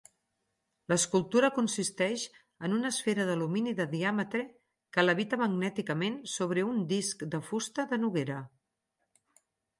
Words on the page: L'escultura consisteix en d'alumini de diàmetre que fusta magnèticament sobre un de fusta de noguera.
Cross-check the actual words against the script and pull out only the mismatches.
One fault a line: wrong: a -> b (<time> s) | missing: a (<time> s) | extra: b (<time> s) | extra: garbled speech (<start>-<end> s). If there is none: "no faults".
extra: una esfera (2.8 s)
wrong: fusta -> levita (5.0 s)
extra: disc (7.0 s)